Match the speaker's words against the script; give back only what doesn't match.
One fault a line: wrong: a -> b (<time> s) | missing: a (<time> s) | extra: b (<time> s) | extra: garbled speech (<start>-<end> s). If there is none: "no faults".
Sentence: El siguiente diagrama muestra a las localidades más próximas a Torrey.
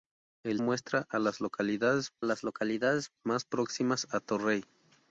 wrong: siguiente diagrama muestra a -> muestra a las localidades (0.6 s)